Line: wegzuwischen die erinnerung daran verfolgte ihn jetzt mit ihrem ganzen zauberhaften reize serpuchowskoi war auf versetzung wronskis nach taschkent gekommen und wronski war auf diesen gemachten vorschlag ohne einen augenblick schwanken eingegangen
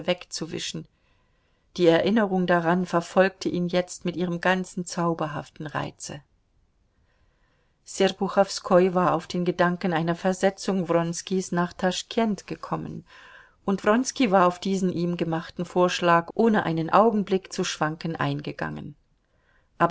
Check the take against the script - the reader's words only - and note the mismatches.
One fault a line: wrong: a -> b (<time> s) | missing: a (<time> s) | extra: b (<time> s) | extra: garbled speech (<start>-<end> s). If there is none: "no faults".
extra: den gedanken einer (9.3 s)
extra: ihm (14.9 s)
extra: zu (17.5 s)